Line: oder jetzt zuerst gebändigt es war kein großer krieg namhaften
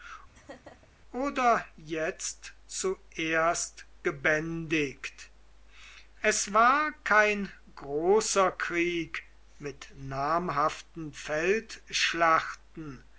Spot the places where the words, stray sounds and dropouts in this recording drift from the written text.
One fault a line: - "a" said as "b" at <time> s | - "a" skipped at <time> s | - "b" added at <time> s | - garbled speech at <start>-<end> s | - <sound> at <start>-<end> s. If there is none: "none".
- laugh at 0.3-0.9 s
- "mit" added at 9.6 s